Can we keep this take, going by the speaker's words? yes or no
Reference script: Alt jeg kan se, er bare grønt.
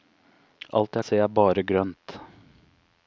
no